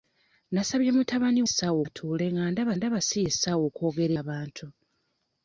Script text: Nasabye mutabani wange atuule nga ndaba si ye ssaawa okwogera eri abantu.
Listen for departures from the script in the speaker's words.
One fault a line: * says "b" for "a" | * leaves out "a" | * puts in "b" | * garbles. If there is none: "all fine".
* says "ssaawa" for "wange"
* puts in "ndaba"
* leaves out "eri"